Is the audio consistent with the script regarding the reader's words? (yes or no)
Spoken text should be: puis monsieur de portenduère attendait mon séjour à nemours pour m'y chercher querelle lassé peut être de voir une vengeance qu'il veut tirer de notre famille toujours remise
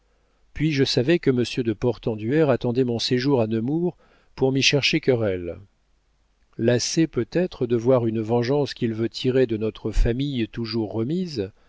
no